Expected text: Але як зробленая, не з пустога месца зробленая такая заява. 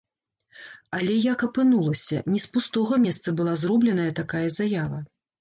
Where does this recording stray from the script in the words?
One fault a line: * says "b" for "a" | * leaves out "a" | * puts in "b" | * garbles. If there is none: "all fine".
* says "апынулася" for "зробленая"
* puts in "была"